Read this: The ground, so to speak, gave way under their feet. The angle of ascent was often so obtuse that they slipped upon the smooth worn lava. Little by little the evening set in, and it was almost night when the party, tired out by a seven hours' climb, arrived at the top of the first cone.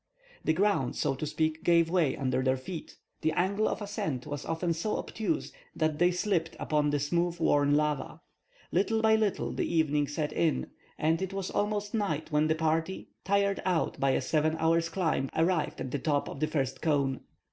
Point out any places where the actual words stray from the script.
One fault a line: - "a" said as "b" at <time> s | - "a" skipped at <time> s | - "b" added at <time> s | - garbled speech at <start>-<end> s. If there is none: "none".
none